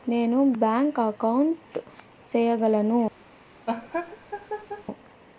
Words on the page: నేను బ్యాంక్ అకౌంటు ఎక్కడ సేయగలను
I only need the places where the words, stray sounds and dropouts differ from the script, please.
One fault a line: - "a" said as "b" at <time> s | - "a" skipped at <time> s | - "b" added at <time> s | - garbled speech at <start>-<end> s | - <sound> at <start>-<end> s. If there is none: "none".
- "ఎక్కడ" skipped at 1.8 s
- laugh at 3.7-4.8 s